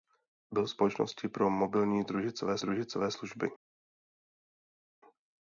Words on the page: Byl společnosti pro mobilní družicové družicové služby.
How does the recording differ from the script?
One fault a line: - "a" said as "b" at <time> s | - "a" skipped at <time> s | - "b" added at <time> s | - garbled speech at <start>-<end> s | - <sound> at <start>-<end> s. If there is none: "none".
none